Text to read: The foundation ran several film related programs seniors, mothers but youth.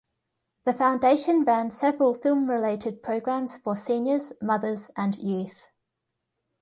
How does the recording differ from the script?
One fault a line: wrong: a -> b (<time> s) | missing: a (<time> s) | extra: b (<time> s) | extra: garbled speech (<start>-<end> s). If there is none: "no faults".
extra: for (3.6 s)
wrong: but -> and (5.0 s)